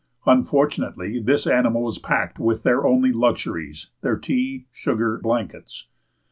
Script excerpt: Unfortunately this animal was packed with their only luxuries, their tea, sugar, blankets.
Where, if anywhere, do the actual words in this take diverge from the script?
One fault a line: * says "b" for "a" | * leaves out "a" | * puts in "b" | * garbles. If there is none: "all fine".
all fine